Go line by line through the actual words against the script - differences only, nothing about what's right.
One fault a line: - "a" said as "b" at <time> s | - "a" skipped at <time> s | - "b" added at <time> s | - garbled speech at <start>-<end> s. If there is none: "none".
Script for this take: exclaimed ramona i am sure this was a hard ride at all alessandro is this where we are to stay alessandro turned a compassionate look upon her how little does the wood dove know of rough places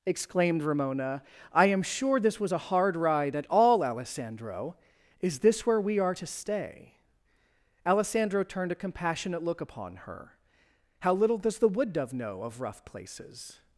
none